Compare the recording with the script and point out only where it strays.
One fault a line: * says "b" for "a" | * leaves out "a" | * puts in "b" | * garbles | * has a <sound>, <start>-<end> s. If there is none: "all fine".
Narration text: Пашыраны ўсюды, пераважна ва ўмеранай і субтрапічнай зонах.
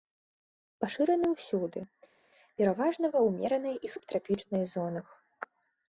all fine